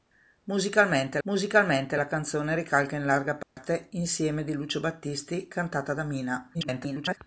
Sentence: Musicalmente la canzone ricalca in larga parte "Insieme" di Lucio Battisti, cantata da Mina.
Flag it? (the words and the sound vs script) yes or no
yes